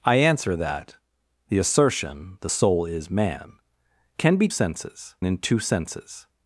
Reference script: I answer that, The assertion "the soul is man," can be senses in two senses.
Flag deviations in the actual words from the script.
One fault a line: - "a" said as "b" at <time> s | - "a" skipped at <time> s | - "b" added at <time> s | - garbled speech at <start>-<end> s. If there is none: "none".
none